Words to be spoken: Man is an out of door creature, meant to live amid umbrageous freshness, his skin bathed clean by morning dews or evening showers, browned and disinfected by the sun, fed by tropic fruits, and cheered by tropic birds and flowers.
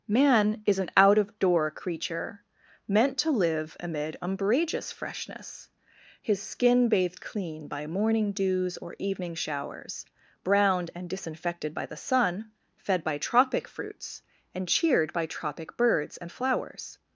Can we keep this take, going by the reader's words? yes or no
yes